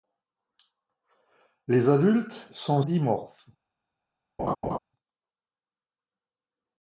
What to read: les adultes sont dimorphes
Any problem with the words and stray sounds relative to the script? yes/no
yes